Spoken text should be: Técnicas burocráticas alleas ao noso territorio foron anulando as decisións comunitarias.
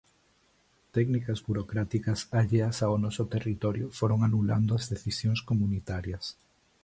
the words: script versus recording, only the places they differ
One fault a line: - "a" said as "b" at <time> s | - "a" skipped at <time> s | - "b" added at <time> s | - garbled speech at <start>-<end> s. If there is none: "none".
none